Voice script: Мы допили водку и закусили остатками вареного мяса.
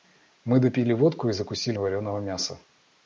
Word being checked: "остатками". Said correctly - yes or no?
no